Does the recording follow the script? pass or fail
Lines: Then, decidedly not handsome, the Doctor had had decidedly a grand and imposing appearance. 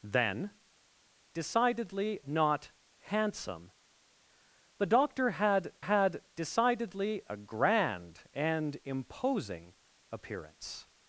pass